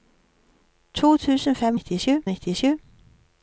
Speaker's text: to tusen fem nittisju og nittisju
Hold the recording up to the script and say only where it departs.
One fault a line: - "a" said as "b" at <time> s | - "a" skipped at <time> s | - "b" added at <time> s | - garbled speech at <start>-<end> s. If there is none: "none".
none